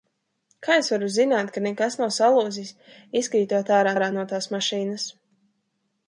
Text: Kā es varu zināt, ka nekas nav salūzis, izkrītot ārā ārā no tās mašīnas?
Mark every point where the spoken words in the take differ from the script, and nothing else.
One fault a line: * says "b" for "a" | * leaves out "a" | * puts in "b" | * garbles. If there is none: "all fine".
all fine